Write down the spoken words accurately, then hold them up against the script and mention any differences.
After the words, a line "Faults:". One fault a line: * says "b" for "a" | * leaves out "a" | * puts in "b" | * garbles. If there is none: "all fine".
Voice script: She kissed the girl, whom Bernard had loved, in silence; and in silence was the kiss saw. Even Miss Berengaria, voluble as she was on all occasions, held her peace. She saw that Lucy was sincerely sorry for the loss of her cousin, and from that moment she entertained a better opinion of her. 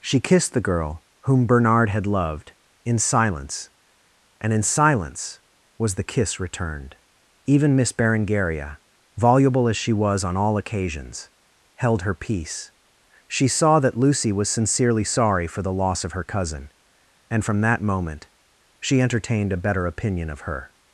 She kissed the girl, whom Bernard had loved, in silence; and in silence was the kiss returned. Even Miss Berengaria, voluble as she was on all occasions, held her peace. She saw that Lucy was sincerely sorry for the loss of her cousin, and from that moment she entertained a better opinion of her.
Faults:
* says "returned" for "saw"